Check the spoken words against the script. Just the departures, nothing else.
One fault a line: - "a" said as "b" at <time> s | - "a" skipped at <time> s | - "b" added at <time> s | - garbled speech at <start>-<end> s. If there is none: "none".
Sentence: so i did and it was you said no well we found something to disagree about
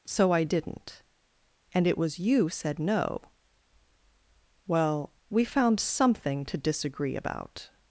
- "did" said as "didn't" at 0.4 s